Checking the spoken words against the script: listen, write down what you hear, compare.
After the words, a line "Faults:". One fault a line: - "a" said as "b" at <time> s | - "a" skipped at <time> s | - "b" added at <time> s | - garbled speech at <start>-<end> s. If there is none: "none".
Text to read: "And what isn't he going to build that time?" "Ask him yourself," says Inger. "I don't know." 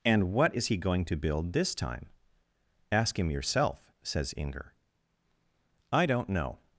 "And what is he going to build this time?" "Ask him yourself," says Inger. "I don't know."
Faults:
- "isn't" said as "is" at 0.5 s
- "that" said as "this" at 1.5 s